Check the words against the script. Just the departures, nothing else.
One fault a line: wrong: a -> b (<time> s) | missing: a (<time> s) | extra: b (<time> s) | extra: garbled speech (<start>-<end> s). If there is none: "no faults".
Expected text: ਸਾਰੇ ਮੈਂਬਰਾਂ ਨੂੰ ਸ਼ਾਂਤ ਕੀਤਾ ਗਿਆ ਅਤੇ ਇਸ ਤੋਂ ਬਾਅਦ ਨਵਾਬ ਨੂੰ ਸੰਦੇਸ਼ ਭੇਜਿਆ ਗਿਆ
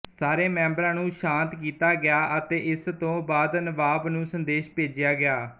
no faults